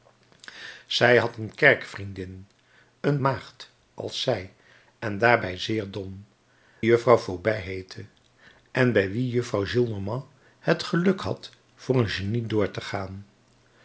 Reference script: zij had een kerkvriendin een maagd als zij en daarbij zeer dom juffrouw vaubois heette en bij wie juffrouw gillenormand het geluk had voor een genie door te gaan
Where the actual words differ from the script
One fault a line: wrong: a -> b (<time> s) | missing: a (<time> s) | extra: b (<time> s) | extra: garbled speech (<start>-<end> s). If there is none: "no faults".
no faults